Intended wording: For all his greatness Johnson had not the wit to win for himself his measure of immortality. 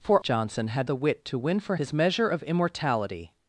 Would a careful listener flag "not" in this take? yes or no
yes